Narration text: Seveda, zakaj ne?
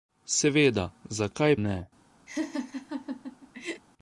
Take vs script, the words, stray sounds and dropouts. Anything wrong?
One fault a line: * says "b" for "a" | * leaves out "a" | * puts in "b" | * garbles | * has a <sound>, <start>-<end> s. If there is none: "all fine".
* has a laugh, 2.3-3.8 s